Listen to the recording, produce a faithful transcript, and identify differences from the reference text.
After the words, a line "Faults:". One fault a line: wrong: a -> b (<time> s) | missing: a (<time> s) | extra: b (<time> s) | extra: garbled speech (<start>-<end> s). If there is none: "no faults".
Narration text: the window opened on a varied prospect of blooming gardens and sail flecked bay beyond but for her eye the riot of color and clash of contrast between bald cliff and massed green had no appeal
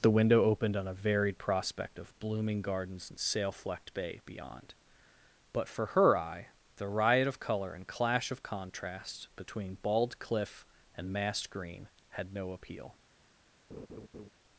the window opened on a varied prospect of blooming gardens and sail flecked bay beyond but for her eye the riot of color and clash of contrast between bald cliff and massed green had no appeal
Faults:
no faults